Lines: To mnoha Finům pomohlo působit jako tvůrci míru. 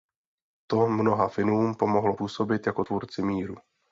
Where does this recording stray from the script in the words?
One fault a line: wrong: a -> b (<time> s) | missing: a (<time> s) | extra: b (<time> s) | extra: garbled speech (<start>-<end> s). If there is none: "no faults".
no faults